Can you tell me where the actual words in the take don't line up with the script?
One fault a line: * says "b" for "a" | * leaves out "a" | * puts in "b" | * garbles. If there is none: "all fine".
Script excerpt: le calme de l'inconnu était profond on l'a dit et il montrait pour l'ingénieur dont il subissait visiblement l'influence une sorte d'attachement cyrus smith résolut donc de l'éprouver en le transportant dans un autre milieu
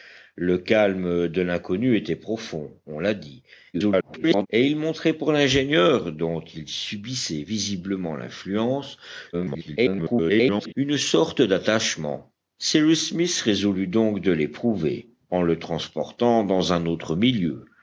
* garbles
* garbles